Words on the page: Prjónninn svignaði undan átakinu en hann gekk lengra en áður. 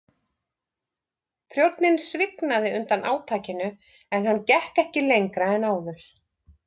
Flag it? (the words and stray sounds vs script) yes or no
yes